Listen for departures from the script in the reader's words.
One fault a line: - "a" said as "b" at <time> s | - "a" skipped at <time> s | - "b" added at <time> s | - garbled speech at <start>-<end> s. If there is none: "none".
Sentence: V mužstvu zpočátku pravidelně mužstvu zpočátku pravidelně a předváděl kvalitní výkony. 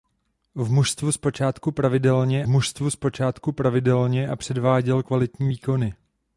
none